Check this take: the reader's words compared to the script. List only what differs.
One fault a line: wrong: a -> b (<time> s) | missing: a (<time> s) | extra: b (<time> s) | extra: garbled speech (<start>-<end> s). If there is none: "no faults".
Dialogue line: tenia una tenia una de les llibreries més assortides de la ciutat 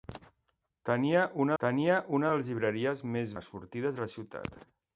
no faults